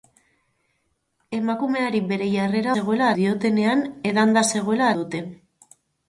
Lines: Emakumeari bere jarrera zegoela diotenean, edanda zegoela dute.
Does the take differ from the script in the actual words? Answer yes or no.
no